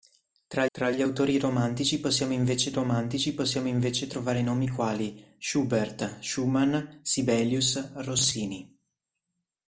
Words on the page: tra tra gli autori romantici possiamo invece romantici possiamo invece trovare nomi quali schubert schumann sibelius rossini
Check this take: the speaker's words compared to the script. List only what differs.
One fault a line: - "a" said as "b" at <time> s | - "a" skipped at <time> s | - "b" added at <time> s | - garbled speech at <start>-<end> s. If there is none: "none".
none